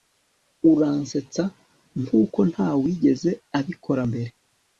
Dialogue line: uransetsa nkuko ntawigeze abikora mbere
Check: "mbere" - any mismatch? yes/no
no